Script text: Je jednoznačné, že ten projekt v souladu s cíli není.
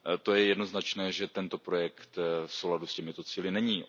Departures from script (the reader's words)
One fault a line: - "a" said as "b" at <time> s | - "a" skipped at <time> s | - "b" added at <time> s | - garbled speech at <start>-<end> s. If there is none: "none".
- "ten" said as "tento" at 1.3 s
- "těmito" added at 2.9 s